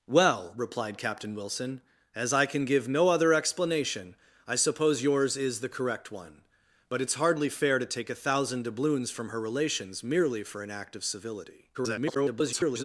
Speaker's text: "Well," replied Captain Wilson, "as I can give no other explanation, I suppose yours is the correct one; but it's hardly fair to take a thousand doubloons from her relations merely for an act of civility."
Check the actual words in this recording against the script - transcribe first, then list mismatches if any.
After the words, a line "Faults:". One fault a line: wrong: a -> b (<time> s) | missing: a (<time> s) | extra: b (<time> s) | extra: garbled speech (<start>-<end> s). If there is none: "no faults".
"Well," replied Captain Wilson, "as I can give no other explanation, I suppose yours is the correct one; but it's hardly fair to take a thousand doubloons from her relations merely for an act of civility." [garbled]
Faults:
extra: garbled speech (11.7-12.8 s)